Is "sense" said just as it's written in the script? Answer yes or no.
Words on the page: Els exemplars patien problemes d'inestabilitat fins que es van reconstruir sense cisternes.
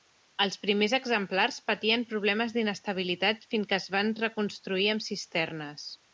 no